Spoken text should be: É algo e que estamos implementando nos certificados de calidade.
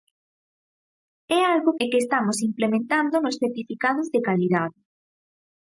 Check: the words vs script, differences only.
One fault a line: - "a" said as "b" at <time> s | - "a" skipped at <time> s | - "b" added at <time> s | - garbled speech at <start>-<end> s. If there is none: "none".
none